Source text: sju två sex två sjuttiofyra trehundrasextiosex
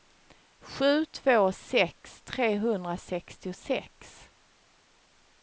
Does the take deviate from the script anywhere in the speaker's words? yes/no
yes